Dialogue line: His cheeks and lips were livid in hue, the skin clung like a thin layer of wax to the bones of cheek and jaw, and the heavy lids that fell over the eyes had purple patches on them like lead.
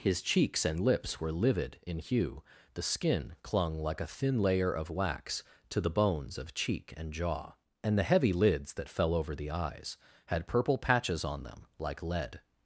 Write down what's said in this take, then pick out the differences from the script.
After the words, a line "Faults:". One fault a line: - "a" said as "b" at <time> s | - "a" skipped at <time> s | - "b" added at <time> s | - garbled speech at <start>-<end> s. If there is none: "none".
His cheeks and lips were livid in hue, the skin clung like a thin layer of wax to the bones of cheek and jaw, and the heavy lids that fell over the eyes had purple patches on them like lead.
Faults:
none